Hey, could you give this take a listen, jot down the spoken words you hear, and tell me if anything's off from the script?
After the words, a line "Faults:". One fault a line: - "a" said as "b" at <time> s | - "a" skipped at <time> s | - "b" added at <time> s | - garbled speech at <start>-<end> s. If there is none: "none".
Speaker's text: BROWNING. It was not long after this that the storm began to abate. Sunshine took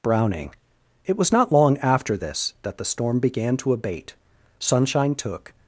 BROWNING. It was not long after this that the storm began to abate. Sunshine took
Faults:
none